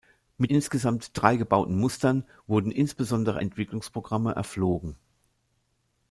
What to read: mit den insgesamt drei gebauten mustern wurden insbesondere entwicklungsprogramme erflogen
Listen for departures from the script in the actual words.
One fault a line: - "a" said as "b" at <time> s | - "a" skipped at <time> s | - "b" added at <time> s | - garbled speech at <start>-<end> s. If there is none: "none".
- "den" skipped at 0.5 s